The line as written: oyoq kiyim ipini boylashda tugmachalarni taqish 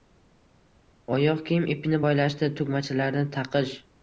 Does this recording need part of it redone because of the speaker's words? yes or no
no